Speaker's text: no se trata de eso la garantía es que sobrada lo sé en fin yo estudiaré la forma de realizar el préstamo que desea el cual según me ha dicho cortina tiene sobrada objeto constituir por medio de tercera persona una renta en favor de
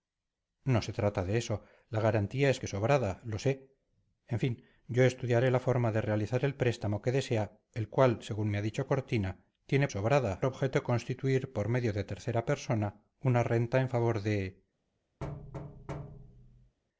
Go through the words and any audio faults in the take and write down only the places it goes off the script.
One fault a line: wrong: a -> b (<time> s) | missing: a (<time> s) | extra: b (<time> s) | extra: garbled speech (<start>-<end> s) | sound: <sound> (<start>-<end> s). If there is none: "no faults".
sound: thud (15.2-16.8 s)